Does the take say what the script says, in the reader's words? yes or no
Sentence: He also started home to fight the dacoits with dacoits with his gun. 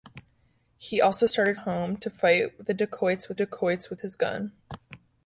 yes